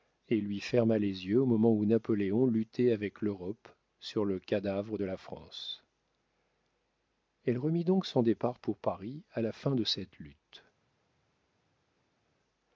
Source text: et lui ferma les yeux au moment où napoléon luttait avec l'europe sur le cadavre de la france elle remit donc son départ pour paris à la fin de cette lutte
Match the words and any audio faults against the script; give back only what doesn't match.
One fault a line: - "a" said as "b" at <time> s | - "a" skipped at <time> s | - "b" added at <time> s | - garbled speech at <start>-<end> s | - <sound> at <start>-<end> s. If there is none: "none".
none